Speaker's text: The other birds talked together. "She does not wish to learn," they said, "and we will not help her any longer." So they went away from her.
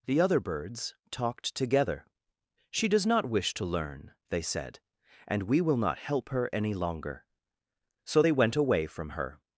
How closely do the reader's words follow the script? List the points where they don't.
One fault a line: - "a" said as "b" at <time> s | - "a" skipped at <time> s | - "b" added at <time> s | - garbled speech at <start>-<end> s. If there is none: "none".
none